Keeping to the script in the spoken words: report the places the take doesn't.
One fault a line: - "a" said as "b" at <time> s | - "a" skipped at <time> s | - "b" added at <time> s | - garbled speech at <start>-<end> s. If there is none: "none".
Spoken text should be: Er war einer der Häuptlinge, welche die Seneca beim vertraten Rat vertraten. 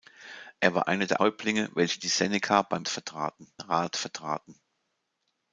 none